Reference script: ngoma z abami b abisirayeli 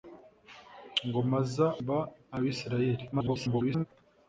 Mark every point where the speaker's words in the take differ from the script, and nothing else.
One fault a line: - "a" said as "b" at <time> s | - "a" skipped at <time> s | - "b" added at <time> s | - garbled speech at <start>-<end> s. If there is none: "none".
- "abami" skipped at 1.6 s
- garbled speech at 3.1-3.9 s